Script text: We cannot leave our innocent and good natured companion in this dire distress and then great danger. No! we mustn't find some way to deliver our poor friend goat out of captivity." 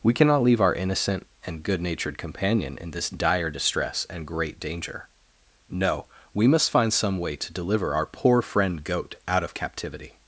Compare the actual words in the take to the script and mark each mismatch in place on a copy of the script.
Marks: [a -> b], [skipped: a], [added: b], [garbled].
We cannot leave our innocent and good natured companion in this dire distress and [skipped: then] great danger. No! we [mustn't -> must] find some way to deliver our poor friend goat out of captivity."